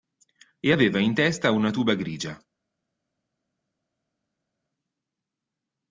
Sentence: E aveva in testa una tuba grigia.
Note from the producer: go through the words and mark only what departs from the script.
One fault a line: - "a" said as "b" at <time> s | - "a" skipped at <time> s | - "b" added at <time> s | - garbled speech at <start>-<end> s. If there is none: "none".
none